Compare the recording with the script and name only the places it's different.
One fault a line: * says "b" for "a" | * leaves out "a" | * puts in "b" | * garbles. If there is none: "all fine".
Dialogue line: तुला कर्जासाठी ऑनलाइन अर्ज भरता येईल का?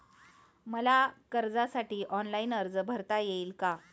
* says "मला" for "तुला"